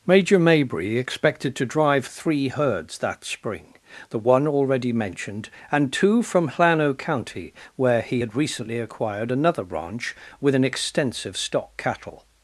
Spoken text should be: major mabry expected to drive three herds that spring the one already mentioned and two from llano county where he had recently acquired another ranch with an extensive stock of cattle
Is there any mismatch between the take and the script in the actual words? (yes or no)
yes